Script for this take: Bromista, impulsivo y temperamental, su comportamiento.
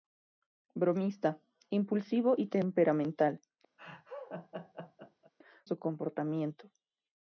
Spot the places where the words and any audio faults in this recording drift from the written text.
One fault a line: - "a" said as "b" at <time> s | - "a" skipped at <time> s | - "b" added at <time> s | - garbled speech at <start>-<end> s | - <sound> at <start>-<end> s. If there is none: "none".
- laugh at 3.8-5.3 s